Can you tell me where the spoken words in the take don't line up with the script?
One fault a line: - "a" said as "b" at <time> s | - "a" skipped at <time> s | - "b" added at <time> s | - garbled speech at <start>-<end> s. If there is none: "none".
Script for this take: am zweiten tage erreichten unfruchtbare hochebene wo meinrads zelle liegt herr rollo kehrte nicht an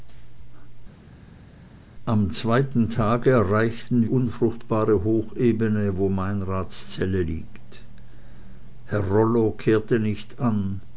none